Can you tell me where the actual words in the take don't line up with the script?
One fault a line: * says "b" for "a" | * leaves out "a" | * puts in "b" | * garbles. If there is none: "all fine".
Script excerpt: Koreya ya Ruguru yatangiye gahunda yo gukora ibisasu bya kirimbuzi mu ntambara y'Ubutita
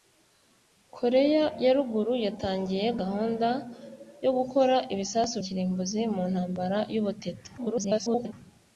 * leaves out "bya"
* garbles